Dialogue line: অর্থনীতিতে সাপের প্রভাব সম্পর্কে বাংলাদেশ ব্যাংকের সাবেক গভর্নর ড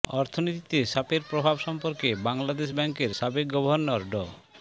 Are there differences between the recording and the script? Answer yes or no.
no